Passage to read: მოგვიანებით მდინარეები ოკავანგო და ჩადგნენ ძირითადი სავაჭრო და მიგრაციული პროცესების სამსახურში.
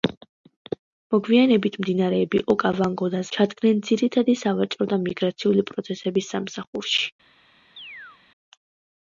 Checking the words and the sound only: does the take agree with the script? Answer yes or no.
no